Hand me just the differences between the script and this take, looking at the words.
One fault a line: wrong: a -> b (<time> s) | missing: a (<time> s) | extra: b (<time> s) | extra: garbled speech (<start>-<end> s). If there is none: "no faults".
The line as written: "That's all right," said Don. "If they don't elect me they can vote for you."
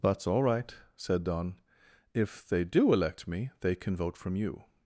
wrong: don't -> do (2.6 s)
wrong: for -> from (4.2 s)